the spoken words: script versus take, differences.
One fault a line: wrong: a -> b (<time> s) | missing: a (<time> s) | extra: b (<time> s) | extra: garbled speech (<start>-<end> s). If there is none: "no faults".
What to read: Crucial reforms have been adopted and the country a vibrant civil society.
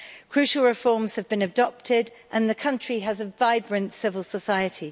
extra: has (3.0 s)